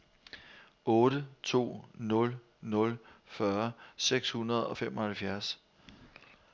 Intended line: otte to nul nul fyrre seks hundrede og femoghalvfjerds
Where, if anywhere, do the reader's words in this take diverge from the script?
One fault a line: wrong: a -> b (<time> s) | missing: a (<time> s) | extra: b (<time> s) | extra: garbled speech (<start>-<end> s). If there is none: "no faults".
no faults